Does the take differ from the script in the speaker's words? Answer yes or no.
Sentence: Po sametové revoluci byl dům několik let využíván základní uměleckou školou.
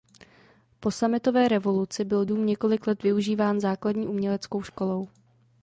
no